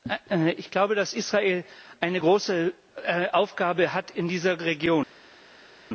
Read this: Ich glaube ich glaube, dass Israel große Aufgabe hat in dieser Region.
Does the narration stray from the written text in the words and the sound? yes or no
yes